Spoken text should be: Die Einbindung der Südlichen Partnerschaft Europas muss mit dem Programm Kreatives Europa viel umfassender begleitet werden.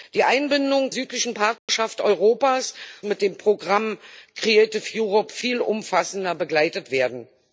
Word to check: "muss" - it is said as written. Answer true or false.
false